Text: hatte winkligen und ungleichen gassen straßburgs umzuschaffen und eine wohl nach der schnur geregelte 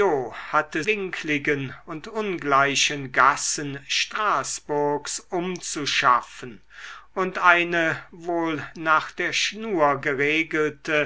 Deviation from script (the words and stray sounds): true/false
false